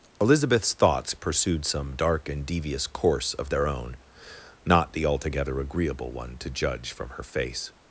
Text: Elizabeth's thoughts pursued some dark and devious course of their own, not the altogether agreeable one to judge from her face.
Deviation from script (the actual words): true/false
false